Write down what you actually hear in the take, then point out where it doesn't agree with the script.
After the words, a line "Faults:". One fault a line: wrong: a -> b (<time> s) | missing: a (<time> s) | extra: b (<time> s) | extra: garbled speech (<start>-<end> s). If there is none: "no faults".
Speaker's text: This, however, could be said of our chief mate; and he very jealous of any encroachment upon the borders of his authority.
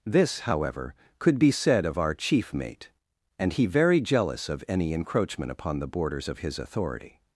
This, however, could be said of our chief mate; and he very jealous of any encroachment upon the borders of his authority.
Faults:
no faults